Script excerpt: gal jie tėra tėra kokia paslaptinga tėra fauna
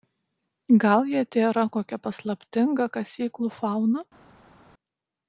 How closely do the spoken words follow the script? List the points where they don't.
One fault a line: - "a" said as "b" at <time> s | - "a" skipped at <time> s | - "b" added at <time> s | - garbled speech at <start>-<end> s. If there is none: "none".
- "tėra" skipped at 1.6 s
- "tėra" said as "kasyklų" at 3.0 s